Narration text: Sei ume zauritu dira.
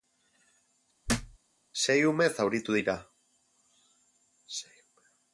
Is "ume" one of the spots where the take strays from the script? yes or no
no